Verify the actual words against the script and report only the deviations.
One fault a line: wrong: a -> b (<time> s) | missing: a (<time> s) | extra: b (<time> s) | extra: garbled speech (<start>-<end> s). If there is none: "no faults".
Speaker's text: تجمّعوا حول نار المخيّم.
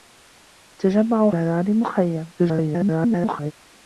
missing: حول (1.3 s)
extra: garbled speech (2.4-3.5 s)